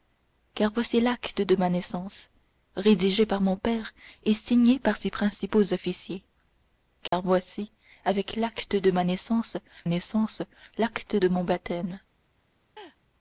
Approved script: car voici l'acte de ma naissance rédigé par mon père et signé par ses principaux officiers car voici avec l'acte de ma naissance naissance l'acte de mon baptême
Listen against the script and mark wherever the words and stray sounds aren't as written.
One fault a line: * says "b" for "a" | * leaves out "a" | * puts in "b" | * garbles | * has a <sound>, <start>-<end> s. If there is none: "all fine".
* has a dropout, 7.1-7.1 s
* has a laugh, 12.8-13.0 s